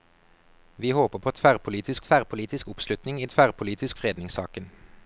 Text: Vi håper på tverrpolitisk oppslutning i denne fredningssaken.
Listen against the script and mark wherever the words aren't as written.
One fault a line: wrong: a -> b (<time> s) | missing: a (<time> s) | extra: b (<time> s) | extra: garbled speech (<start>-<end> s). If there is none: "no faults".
extra: tverrpolitisk (2.0 s)
wrong: denne -> tverrpolitisk (3.2 s)